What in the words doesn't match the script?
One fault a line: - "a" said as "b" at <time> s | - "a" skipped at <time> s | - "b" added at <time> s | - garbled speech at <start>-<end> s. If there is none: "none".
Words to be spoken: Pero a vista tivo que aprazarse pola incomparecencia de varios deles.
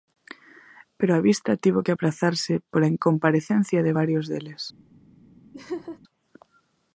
none